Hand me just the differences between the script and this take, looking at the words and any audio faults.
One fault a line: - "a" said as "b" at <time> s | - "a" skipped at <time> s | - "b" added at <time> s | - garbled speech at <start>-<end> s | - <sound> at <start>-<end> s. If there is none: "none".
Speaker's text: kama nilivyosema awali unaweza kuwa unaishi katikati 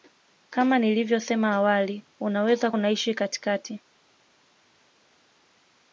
- "kuwa" skipped at 2.7 s